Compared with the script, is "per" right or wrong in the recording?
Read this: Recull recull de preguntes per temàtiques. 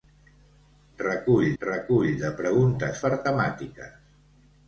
right